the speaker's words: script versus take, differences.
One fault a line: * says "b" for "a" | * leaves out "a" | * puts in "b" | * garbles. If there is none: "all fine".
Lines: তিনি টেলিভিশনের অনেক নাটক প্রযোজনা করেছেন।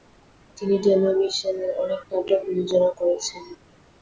all fine